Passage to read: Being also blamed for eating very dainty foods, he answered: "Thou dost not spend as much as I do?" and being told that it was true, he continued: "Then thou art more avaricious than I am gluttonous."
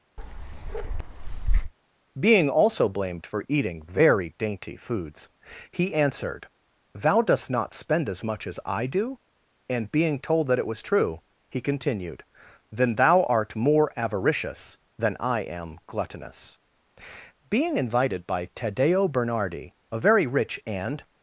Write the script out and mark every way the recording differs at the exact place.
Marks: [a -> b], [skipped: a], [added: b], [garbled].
Being also blamed for eating very dainty foods, he answered: "Thou dost not spend as much as I do?" and being told that it was true, he continued: "Then thou art more avaricious than I am gluttonous." [added: Being invited by Taddeo Bernardi a very rich and]